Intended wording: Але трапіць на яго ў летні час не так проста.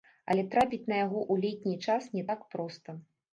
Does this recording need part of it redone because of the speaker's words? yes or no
no